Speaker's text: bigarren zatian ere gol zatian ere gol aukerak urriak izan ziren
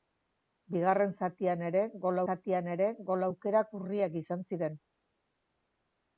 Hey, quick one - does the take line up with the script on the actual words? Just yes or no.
yes